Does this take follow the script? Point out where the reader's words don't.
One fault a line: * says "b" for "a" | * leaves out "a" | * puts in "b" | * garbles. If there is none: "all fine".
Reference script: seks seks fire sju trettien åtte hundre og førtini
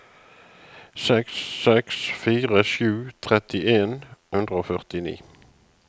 * leaves out "åtte"